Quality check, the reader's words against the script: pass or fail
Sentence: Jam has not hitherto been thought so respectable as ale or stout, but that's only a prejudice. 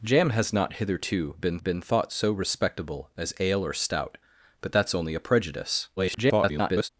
fail